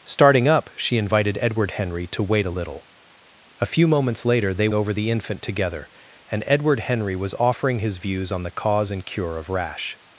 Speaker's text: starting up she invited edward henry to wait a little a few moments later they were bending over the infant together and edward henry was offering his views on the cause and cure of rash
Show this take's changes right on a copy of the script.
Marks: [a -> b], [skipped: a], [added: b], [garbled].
starting up she invited edward henry to wait a little a few moments later they [skipped: were bending] over the infant together and edward henry was offering his views on the cause and cure of rash